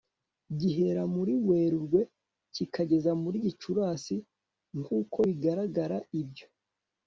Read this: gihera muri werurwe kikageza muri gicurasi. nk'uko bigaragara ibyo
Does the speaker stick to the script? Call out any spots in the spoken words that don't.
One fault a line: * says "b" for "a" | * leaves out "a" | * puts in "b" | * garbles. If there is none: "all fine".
all fine